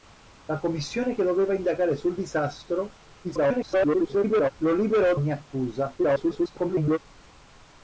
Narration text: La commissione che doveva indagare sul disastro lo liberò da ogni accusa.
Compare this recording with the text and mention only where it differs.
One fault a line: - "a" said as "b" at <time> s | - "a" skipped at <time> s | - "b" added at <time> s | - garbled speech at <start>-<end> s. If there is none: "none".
- garbled speech at 3.2-4.5 s
- "da" skipped at 5.2 s
- garbled speech at 6.0-7.0 s